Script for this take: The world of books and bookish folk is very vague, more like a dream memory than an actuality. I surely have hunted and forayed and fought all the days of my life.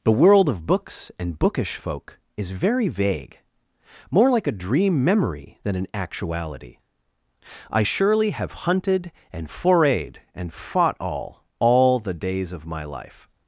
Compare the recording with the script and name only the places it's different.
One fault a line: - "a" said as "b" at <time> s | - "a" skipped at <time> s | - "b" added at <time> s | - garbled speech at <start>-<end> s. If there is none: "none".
- "all" added at 11.6 s